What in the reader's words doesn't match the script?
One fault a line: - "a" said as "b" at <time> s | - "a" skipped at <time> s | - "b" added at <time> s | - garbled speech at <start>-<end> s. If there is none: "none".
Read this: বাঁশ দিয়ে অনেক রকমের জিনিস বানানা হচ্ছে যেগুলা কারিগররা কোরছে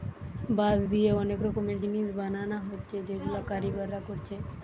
none